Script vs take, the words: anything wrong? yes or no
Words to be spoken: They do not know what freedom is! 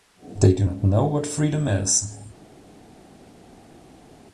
no